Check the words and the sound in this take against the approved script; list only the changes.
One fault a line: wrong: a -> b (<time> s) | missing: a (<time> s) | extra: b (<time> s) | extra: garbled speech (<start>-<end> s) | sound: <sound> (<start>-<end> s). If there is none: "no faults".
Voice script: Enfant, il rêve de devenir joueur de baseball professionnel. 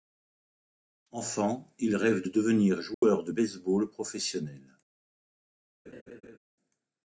sound: dropout (2.9-3.0 s)
sound: laugh (5.9-6.4 s)